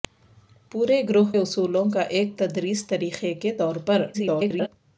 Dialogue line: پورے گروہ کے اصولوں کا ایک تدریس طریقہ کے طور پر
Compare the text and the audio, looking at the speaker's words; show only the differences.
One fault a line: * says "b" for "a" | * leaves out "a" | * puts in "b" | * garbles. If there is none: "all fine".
* leaves out "کے"
* garbles